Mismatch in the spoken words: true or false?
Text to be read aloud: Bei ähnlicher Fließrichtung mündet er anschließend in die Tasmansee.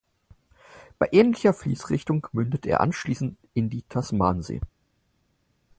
false